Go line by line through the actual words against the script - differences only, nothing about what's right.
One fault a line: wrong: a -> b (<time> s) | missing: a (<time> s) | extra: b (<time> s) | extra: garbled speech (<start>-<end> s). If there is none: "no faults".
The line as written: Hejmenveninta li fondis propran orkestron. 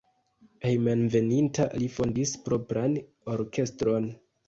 no faults